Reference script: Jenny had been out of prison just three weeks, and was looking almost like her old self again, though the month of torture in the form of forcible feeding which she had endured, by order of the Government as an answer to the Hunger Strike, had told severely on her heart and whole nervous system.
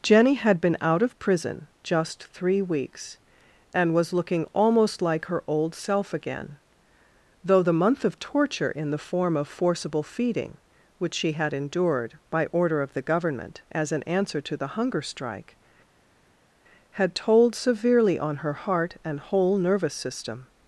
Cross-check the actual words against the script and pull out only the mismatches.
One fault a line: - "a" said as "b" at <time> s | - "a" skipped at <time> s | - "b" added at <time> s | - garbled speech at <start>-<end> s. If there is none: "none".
none